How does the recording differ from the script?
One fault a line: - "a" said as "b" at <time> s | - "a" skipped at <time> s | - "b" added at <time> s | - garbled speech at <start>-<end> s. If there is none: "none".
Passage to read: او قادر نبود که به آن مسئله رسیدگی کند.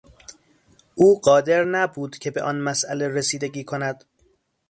none